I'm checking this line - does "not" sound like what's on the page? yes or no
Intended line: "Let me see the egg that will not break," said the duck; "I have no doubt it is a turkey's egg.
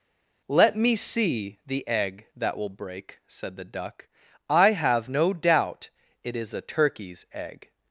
no